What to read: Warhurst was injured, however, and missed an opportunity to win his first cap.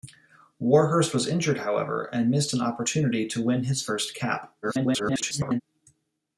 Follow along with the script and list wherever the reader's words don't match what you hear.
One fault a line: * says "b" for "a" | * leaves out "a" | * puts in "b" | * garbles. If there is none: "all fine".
* garbles